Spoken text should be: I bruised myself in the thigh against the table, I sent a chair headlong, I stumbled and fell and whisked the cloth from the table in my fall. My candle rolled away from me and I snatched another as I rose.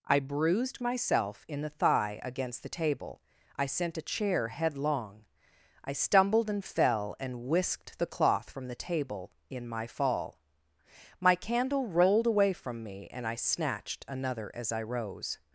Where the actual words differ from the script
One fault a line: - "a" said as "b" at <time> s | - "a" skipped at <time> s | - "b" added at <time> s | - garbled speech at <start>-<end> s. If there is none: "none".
none